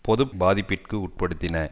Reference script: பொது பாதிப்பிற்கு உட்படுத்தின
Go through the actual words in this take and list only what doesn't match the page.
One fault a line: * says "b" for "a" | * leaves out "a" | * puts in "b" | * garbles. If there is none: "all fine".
all fine